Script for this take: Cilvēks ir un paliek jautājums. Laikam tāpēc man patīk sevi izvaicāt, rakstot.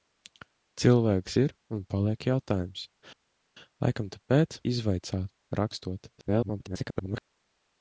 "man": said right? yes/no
no